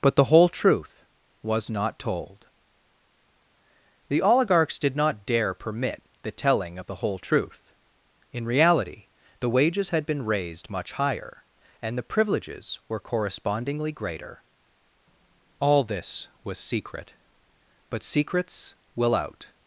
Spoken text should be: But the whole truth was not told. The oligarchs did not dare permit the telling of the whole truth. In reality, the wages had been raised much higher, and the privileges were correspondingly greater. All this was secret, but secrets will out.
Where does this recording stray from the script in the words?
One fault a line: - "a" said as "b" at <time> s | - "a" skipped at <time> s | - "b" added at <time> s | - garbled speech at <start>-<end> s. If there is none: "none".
none